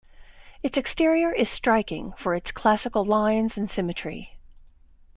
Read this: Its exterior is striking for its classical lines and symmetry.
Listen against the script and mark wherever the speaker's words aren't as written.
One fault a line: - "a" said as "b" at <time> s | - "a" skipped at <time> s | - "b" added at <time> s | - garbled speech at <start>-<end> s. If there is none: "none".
none